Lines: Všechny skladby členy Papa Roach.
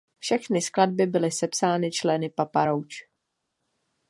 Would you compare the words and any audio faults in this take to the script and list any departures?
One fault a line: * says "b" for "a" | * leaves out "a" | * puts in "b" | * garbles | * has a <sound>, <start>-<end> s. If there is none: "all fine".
* puts in "byly sepsány"